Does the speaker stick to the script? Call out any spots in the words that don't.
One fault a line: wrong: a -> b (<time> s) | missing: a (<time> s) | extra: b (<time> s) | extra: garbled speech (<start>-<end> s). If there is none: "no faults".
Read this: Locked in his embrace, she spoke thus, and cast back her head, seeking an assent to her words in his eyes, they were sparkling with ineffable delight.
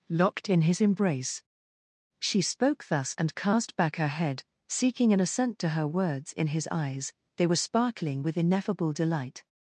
no faults